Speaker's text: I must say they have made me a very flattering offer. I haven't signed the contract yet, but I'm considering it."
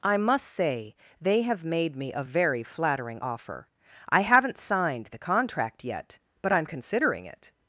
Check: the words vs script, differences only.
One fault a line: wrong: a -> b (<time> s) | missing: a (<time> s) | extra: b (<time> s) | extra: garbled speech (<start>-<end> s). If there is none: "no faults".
no faults